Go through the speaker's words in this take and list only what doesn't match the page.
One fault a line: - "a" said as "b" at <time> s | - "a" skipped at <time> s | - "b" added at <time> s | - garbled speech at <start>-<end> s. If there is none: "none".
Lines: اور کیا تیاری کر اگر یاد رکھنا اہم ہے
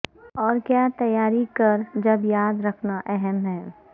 - "اگر" said as "جب" at 1.9 s